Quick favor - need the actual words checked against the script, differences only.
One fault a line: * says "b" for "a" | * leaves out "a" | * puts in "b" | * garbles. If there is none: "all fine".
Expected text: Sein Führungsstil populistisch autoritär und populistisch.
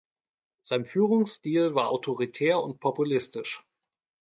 * says "war" for "populistisch"